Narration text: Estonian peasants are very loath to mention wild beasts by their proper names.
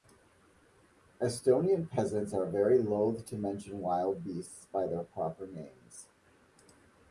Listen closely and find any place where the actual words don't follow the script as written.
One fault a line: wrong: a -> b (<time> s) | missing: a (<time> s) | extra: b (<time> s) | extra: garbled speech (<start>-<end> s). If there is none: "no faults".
no faults